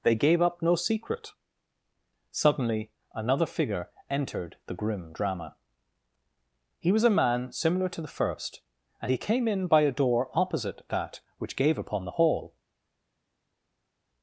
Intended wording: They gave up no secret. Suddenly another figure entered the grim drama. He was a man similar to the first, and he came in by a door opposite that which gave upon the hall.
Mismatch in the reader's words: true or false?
false